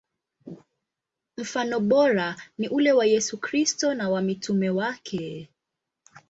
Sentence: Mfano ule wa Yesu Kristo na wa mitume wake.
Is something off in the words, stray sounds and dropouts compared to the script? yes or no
yes